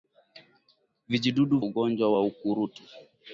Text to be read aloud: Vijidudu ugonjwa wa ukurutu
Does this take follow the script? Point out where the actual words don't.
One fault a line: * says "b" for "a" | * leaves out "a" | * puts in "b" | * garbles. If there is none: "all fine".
all fine